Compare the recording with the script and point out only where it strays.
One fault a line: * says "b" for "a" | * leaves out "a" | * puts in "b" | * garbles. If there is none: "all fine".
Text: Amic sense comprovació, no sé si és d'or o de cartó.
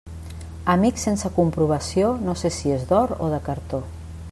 all fine